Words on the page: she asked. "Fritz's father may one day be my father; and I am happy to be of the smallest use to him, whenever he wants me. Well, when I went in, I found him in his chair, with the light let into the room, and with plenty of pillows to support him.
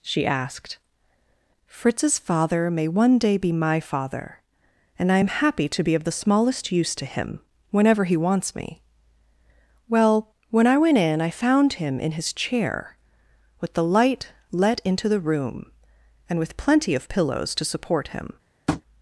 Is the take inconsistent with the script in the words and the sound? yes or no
yes